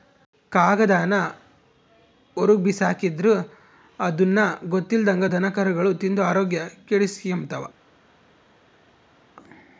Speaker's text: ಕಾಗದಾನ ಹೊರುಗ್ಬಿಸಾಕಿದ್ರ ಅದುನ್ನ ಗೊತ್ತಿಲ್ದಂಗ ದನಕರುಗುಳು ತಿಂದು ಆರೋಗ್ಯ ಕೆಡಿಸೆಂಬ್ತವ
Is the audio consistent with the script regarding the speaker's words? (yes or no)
yes